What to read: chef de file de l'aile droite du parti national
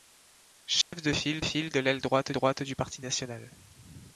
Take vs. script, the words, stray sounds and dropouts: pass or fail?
fail